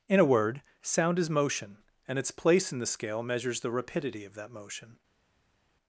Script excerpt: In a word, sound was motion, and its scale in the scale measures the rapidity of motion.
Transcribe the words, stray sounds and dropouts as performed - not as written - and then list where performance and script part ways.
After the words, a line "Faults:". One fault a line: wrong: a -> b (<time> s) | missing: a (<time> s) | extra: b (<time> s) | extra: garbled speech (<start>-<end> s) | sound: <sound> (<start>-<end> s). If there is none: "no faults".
In a word, sound is motion, and its place in the scale measures the rapidity of that motion.
Faults:
wrong: was -> is (1.2 s)
wrong: scale -> place (2.3 s)
extra: that (4.3 s)